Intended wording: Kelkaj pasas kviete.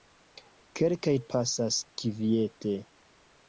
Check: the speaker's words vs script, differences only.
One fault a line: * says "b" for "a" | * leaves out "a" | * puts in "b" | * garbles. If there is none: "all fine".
all fine